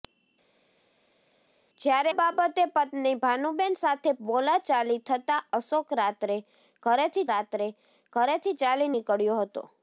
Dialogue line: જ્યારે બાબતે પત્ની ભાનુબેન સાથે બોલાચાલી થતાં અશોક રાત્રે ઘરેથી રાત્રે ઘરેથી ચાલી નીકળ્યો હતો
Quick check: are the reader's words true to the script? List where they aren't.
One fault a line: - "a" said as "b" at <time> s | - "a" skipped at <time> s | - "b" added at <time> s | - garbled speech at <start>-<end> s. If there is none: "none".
none